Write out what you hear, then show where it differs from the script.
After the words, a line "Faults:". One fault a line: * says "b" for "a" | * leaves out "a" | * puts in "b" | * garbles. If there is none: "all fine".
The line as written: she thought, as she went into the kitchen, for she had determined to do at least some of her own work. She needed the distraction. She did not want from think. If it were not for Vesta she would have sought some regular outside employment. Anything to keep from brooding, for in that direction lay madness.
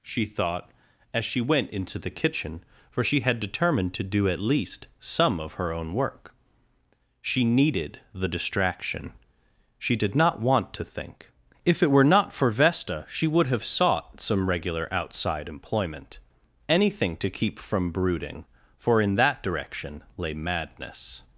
she thought, as she went into the kitchen, for she had determined to do at least some of her own work. She needed the distraction. She did not want to think. If it were not for Vesta she would have sought some regular outside employment. Anything to keep from brooding, for in that direction lay madness.
Faults:
* says "to" for "from"